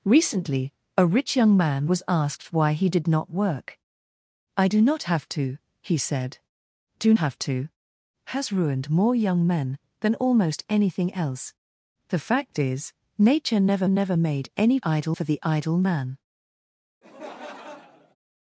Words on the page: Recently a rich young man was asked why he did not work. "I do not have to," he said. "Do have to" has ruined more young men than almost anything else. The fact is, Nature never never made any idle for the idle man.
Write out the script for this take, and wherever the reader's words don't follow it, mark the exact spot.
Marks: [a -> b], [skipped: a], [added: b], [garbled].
Recently a rich young man was asked why he did not work. "I do not have to," he said. "Do have to" has ruined more young men than almost anything else. The fact is, Nature never never made any idle for the idle man.